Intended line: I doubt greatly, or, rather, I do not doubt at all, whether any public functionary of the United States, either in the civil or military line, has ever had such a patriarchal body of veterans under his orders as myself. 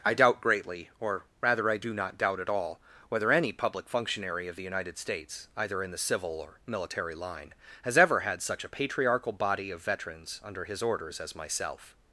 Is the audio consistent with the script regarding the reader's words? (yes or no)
yes